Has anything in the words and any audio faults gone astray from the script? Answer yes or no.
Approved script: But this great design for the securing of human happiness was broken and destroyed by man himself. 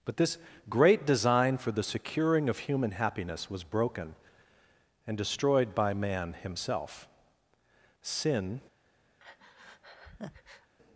yes